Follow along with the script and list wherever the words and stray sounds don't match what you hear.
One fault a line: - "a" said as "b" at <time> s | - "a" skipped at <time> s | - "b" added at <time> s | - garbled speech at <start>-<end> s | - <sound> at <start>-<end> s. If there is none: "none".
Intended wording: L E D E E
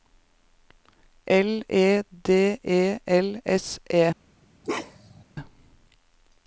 - "L S" added at 3.0 s
- bark at 4.6-5.2 s